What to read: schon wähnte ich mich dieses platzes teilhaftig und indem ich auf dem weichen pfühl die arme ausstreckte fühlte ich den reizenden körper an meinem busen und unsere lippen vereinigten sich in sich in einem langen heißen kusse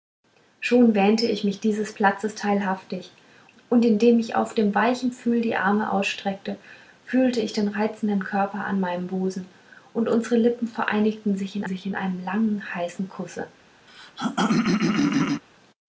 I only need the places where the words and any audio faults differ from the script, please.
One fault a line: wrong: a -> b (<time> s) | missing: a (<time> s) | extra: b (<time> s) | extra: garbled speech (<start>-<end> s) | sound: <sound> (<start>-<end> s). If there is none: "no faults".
sound: throat clearing (13.9-15.4 s)